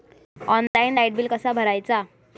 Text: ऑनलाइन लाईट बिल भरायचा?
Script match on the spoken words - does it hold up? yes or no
no